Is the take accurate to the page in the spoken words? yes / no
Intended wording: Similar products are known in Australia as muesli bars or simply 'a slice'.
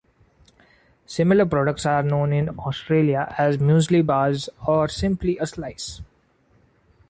yes